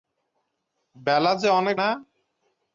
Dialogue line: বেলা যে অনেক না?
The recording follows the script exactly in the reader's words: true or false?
true